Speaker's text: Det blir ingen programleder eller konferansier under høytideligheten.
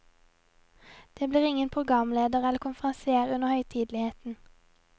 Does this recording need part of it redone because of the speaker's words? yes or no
no